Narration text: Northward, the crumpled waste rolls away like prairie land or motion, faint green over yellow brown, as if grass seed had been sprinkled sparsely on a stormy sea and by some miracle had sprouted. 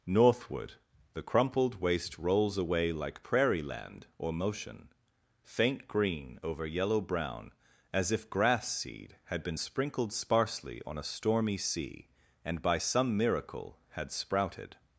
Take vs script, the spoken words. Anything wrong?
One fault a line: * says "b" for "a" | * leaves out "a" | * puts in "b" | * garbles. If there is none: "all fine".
all fine